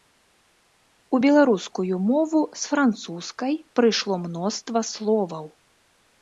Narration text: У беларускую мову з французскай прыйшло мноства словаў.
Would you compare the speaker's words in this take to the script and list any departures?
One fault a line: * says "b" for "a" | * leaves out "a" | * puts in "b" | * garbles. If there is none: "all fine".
all fine